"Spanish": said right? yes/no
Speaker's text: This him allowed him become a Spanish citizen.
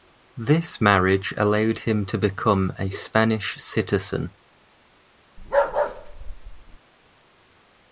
yes